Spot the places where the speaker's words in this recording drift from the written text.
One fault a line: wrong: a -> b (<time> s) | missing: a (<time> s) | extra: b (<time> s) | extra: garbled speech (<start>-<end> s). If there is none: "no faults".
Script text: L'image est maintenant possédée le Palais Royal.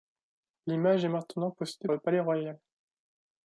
no faults